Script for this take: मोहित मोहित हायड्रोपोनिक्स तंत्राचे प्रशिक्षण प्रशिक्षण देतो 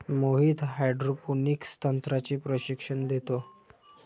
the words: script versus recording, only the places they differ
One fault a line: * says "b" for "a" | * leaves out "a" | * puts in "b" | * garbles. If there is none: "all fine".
* leaves out "मोहित"
* leaves out "प्रशिक्षण"